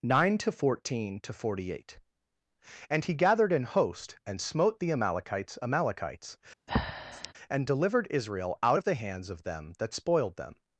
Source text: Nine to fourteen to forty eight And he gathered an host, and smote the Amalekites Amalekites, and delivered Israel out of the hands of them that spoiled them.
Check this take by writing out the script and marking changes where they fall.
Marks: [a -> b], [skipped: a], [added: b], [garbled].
Nine to fourteen to forty eight And he gathered an host, and smote the Amalekites Amalekites, and delivered Israel out of the hands of them that spoiled them.